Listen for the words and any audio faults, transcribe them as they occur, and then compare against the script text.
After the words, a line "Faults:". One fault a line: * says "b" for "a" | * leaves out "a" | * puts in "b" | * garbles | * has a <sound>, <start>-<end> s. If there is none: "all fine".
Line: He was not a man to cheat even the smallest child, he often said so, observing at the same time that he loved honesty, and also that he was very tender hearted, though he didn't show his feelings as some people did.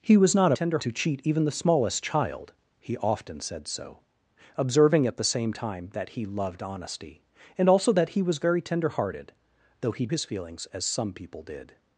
He was not a tender to cheat even the smallest child, he often said so, observing at the same time that he loved honesty, and also that he was very tender hearted, though he his feelings as some people did.
Faults:
* says "tender" for "man"
* leaves out "didn't show"